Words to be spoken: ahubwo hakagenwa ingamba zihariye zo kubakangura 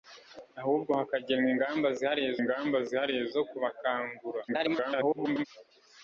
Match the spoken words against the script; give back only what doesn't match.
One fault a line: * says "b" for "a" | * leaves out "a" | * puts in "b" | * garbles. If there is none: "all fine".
* puts in "ingamba zihariye"
* garbles